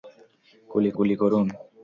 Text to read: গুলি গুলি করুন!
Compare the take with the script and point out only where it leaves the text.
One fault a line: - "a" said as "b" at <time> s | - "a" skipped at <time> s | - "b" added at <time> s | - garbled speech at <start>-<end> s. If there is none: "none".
none